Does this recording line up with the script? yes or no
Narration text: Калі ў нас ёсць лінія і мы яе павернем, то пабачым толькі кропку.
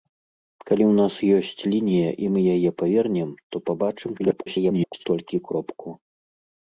no